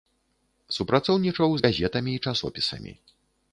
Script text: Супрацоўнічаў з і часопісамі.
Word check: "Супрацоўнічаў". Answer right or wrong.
right